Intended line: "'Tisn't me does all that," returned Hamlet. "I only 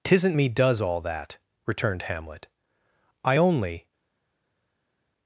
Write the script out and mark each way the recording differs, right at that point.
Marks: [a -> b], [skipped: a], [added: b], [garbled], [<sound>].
"'Tisn't me does all that," returned Hamlet. "I only